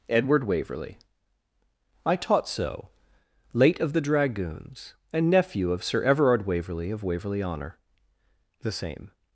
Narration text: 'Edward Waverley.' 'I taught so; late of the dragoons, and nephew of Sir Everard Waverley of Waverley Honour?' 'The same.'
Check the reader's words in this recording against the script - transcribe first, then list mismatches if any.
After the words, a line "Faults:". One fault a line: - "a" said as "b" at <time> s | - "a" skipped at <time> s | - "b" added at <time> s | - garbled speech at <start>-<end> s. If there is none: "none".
'Edward Waverley.' 'I taught so; late of the dragoons, and nephew of Sir Everard Waverley of Waverley Honour?' 'The same.'
Faults:
none